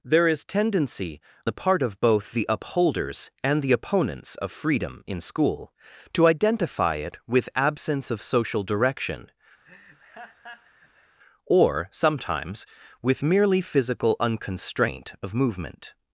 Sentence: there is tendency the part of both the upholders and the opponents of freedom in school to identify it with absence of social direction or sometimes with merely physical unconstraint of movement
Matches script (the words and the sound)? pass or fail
fail